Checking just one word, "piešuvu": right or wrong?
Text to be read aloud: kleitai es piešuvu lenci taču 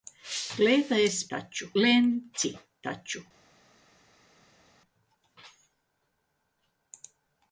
wrong